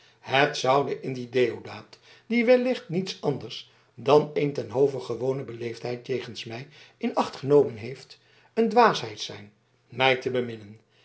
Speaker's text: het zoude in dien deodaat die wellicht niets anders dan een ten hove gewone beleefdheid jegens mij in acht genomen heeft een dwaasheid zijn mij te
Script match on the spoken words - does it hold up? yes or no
yes